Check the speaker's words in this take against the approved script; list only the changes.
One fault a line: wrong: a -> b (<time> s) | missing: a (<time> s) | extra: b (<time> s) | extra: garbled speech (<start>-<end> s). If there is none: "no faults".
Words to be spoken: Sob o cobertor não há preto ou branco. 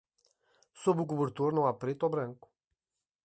no faults